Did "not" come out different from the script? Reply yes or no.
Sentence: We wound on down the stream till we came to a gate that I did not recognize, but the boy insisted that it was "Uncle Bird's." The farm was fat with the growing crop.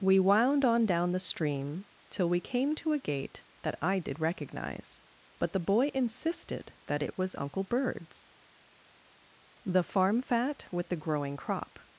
yes